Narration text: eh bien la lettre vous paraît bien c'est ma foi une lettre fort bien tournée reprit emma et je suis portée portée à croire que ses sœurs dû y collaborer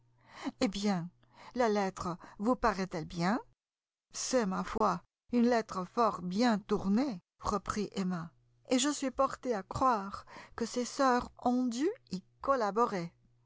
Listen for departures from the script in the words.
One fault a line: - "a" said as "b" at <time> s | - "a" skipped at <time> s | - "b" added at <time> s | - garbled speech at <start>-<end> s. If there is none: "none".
- "elle" added at 2.9 s
- "portée" skipped at 9.5 s
- "ont" added at 11.4 s